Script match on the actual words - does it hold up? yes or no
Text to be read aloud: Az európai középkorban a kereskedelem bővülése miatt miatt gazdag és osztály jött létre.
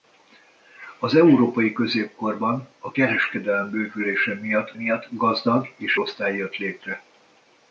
yes